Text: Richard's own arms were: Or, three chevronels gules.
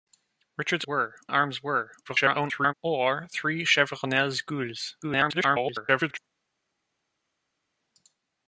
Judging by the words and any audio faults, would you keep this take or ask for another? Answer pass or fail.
fail